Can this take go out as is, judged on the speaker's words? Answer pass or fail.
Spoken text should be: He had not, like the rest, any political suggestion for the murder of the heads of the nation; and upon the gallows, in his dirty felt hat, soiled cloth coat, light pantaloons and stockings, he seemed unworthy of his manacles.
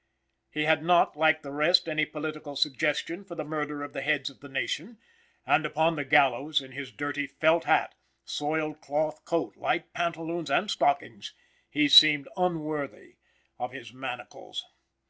pass